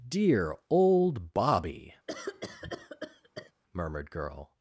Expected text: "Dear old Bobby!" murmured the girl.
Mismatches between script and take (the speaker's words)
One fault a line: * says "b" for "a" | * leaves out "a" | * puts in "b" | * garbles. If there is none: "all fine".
* leaves out "the"